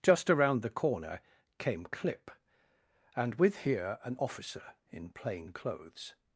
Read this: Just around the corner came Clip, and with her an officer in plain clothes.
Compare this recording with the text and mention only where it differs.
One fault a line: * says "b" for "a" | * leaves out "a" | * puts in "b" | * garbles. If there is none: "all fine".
* says "here" for "her"